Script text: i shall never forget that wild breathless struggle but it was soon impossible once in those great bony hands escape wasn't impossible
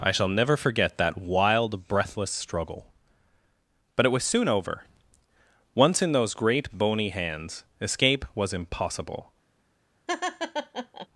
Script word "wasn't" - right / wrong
wrong